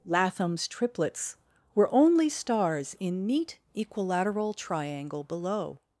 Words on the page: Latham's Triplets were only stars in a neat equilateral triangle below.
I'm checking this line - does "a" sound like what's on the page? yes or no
no